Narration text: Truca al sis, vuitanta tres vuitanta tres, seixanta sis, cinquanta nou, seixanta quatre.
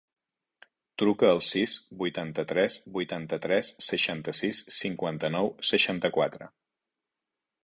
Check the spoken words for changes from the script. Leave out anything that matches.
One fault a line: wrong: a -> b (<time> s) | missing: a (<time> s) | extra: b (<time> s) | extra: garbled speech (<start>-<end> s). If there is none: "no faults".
no faults